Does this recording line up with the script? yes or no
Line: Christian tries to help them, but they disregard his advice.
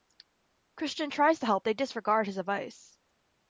no